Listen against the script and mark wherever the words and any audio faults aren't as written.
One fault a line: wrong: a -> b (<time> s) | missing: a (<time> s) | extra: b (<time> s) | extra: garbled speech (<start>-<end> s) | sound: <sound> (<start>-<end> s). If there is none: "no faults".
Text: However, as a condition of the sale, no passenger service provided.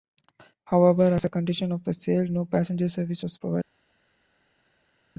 extra: was (3.2 s)